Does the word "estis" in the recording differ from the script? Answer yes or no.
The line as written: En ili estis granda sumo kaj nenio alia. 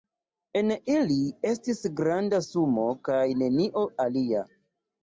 no